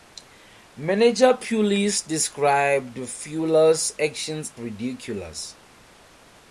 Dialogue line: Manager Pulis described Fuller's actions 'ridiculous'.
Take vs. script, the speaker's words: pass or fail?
pass